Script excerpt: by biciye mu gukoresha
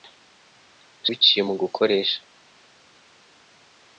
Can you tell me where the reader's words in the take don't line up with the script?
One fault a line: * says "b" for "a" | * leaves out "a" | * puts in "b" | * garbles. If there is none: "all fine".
all fine